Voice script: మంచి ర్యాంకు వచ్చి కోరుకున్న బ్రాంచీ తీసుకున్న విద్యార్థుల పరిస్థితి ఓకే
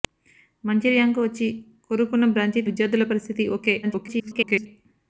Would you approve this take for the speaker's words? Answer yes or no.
no